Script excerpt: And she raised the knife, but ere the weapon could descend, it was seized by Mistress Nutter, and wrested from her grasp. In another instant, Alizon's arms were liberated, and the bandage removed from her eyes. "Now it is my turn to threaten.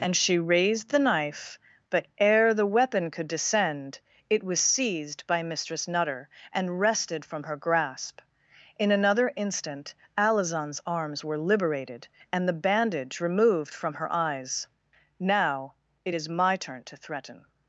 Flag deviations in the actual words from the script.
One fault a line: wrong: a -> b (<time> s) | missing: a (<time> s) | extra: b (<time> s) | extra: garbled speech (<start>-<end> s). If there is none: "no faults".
no faults